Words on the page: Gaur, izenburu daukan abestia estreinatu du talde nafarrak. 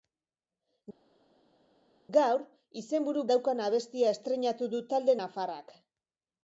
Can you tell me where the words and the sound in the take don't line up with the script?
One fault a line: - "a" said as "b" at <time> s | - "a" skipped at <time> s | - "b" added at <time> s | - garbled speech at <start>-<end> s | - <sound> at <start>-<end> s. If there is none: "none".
none